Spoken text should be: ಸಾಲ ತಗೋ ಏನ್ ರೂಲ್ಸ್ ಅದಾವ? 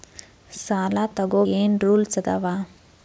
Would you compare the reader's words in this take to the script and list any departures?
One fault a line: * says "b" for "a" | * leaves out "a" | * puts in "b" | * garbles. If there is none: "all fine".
all fine